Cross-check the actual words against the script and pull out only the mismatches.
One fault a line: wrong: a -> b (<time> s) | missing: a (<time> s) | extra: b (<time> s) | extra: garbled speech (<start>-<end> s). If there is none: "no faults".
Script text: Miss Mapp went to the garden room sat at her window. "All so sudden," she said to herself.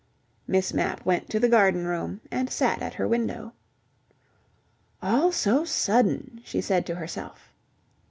extra: and (2.3 s)